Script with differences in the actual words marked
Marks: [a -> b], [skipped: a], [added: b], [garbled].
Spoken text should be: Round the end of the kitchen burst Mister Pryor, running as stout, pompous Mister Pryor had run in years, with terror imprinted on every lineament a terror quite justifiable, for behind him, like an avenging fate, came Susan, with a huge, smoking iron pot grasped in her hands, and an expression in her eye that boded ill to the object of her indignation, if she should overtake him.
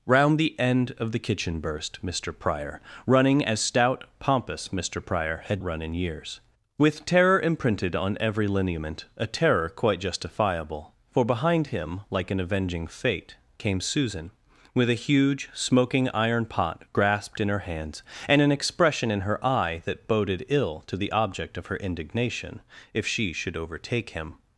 Round the end of the kitchen burst Mister Pryor, running as stout, pompous Mister Pryor had run in years, with terror imprinted on every lineament a terror quite justifiable, for behind him, like an avenging fate, came Susan, with a huge, smoking iron pot grasped in her hands, and an expression in her eye that boded ill to the object of her indignation, if she should overtake him.